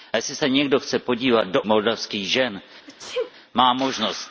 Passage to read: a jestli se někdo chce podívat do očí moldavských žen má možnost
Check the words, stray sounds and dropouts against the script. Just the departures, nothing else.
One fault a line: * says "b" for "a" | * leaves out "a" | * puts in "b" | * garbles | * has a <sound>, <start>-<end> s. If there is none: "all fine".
* leaves out "očí"
* has a sneeze, 2.9-3.3 s